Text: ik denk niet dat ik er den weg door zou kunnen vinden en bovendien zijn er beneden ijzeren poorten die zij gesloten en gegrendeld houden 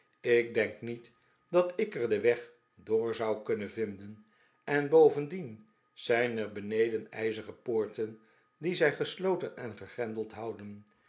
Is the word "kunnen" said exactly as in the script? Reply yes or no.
yes